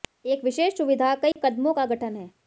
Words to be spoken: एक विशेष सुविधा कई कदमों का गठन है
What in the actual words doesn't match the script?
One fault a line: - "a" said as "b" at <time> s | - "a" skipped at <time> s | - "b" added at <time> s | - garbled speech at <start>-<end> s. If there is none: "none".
none